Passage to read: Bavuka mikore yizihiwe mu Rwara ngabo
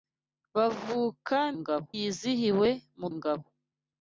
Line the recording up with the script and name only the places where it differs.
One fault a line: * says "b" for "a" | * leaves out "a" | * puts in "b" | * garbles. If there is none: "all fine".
* says "ngabo" for "mikore"
* leaves out "Rwara"